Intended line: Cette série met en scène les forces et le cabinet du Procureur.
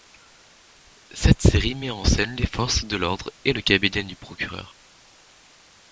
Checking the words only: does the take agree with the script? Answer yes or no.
no